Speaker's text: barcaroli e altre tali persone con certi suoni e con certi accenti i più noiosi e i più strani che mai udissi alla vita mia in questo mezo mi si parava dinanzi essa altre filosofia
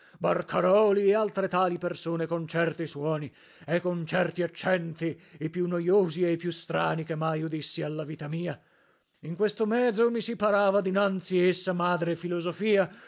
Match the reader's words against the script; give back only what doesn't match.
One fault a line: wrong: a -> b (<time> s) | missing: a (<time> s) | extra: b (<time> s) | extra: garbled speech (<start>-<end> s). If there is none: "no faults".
wrong: altre -> madre (11.7 s)